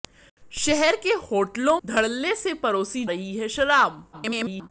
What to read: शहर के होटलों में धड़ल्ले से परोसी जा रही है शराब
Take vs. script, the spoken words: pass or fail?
fail